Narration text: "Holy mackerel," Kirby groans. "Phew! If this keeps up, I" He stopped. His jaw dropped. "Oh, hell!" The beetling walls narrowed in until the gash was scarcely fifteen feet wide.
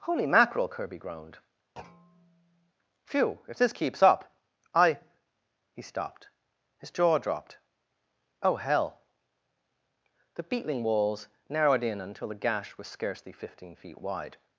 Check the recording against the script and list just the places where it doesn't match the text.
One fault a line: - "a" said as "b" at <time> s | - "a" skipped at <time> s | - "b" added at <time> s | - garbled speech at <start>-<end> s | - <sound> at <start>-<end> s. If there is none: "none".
- "groans" said as "groaned" at 1.0 s
- thud at 1.8-2.7 s